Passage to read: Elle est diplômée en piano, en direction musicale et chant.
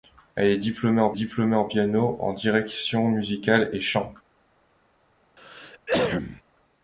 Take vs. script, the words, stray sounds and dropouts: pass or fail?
fail